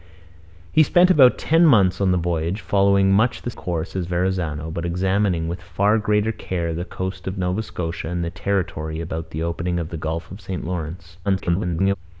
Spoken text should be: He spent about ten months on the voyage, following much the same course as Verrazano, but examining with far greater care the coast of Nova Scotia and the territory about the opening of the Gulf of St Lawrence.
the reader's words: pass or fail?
fail